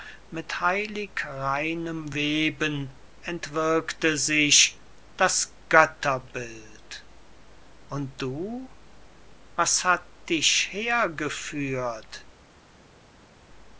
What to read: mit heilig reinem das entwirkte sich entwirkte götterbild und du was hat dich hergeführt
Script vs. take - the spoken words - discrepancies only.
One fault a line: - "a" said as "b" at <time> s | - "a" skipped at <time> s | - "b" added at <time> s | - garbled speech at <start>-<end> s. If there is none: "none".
- "das" said as "weben" at 2.1 s
- "entwirkte" said as "das" at 5.2 s